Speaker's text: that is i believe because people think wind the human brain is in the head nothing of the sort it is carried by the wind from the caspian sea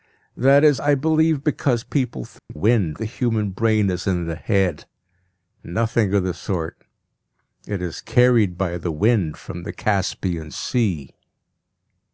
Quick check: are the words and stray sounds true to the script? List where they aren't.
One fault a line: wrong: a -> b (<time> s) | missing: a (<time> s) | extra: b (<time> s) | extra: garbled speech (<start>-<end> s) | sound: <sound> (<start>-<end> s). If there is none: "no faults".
sound: dropout (2.4-2.5 s)